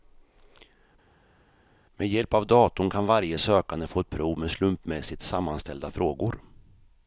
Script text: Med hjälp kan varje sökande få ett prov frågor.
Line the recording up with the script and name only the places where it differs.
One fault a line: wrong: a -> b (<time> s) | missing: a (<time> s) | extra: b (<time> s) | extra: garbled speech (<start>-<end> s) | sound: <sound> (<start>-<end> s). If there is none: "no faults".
extra: av datorn (2.3 s)
extra: med slumpmässigt sammanställda (4.4 s)